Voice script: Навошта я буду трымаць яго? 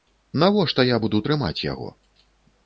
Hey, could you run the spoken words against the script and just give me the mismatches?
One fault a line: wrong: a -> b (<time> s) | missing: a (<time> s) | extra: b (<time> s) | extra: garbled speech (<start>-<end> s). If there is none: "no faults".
no faults